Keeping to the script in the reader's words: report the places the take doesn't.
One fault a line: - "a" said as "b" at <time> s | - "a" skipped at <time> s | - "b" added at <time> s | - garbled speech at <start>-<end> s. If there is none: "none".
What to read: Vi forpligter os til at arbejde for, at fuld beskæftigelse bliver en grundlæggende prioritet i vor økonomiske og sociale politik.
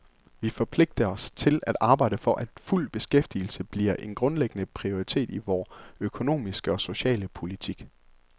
none